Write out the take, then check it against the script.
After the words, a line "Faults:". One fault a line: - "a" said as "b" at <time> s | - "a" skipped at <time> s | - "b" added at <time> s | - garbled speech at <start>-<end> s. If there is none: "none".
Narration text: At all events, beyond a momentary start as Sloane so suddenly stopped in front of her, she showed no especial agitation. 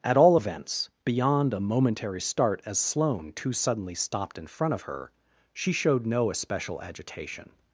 At all events, beyond a momentary start as Sloane too suddenly stopped in front of her, she showed no especial agitation.
Faults:
- "so" said as "too" at 3.3 s